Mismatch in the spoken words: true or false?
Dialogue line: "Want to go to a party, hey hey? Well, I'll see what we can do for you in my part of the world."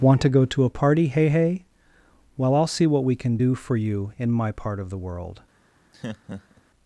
false